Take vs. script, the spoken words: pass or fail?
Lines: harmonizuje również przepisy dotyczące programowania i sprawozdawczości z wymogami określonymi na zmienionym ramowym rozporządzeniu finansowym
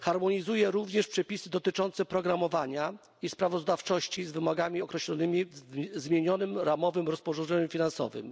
fail